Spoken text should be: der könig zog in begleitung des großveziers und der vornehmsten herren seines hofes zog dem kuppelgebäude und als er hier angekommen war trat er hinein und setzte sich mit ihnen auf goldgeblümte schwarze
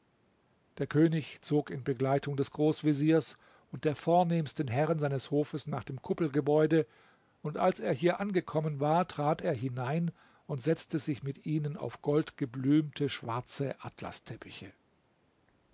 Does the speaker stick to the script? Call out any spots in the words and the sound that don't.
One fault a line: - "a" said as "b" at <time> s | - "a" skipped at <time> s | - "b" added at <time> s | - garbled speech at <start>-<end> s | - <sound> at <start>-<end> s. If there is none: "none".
- "zog" said as "nach" at 5.7 s